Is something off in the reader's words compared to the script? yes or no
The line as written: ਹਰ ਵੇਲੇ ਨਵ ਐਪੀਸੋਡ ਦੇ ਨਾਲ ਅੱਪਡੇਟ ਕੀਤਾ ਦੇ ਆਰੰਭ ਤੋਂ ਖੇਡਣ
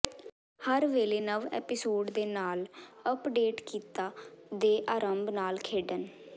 yes